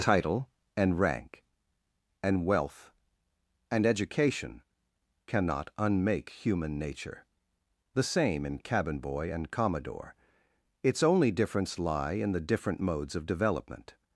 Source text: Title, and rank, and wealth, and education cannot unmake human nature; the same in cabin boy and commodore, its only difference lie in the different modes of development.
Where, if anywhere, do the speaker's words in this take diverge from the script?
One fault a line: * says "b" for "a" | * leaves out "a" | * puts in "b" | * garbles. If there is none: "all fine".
all fine